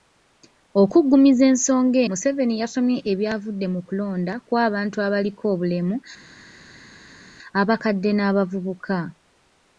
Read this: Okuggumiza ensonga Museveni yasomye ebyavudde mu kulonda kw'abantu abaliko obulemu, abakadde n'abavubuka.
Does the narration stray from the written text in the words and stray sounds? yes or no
no